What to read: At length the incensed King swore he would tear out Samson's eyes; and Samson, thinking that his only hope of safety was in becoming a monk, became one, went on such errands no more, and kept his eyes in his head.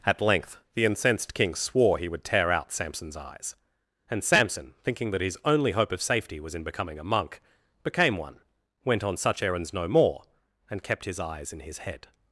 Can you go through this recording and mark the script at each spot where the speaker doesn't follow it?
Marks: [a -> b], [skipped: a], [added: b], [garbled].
At length the incensed King swore he would tear out Samson's eyes; and Samson, thinking that his only hope of safety was in becoming a monk, became one, went on such errands no more, and kept his eyes in his head.